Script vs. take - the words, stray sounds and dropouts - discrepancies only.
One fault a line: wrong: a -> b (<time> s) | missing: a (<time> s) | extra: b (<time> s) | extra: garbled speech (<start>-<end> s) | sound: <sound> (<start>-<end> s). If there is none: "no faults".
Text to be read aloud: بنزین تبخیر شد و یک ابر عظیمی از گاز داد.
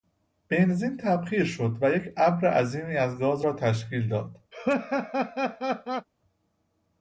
extra: را تشکیل (3.4 s)
sound: laugh (4.5-6.1 s)